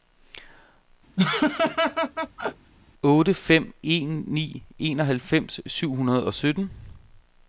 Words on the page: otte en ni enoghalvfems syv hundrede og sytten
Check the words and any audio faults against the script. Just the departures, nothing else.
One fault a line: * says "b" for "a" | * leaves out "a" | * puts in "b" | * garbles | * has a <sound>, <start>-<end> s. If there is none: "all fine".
* has a laugh, 1.2-2.7 s
* puts in "fem"